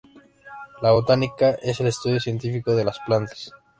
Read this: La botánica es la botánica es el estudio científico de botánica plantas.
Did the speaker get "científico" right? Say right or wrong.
right